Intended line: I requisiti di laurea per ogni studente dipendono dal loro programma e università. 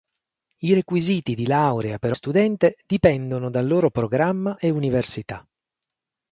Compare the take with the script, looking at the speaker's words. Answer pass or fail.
fail